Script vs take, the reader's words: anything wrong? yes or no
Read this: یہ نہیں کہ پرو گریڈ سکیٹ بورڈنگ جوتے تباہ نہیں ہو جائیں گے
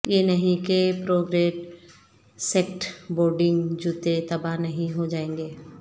no